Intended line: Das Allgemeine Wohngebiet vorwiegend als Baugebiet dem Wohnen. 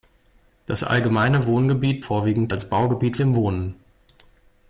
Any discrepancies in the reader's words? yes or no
no